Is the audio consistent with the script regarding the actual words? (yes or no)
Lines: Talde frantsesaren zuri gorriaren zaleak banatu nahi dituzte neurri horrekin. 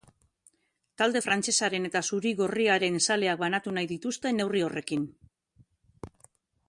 no